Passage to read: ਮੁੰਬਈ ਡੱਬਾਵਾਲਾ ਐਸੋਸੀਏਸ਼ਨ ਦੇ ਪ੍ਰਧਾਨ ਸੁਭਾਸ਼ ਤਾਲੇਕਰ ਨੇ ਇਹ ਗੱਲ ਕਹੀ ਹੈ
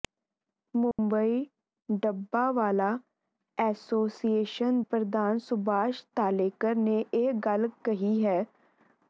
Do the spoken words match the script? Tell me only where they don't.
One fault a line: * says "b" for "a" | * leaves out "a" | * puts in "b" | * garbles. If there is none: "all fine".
* leaves out "ਦੇ"